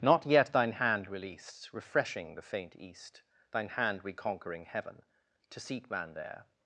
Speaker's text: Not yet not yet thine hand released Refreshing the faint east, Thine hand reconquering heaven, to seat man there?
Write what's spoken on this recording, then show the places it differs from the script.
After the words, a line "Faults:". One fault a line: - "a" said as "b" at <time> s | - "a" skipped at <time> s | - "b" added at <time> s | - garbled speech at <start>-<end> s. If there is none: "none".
Not yet thine hand released Refreshing the faint east, Thine hand reconquering heaven, to seat man there?
Faults:
- "not yet" skipped at 0.5 s